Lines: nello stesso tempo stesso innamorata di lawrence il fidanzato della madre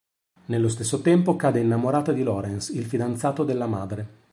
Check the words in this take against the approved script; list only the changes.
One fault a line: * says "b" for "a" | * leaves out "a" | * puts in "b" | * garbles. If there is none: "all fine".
* says "cade" for "stesso"